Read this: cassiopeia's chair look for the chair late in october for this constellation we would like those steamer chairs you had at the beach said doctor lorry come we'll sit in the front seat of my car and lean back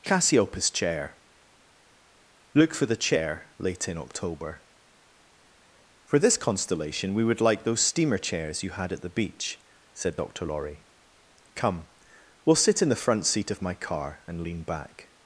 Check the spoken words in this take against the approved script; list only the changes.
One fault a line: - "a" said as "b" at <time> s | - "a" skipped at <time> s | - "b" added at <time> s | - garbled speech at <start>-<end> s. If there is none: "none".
none